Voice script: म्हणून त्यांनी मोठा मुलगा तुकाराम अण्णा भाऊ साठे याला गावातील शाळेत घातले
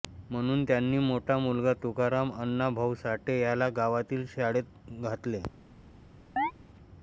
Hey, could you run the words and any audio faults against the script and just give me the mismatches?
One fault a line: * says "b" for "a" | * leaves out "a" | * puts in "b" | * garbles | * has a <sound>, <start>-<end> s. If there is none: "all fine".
* has a chirp, 6.4-6.5 s